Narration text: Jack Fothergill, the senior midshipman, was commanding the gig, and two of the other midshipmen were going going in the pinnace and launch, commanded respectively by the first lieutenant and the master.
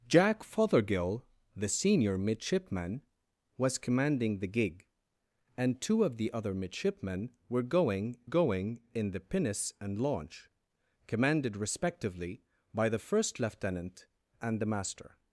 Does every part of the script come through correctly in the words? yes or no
yes